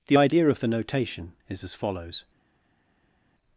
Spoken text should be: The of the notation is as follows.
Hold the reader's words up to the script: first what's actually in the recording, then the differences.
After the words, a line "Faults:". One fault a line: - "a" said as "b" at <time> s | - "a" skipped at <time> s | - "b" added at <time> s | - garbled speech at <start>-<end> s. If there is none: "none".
The idea of the notation is as follows.
Faults:
- "idea" added at 0.1 s